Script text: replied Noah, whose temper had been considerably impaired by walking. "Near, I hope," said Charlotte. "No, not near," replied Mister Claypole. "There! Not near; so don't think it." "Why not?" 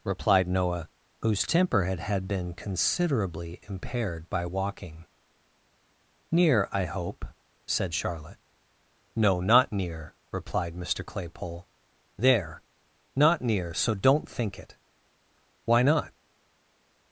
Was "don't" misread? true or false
false